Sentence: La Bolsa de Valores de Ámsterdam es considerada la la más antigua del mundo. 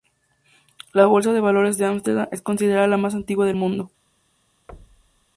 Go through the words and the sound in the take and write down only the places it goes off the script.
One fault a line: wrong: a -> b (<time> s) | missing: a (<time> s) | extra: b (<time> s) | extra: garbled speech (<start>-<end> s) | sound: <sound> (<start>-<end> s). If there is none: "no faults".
missing: la (3.0 s)
sound: thud (4.7-5.3 s)